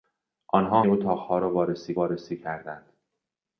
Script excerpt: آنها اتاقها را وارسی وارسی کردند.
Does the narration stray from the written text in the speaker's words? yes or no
no